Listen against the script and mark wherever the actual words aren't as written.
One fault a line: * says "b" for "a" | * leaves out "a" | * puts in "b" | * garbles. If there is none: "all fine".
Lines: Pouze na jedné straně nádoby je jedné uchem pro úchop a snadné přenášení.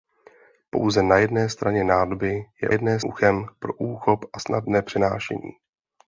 all fine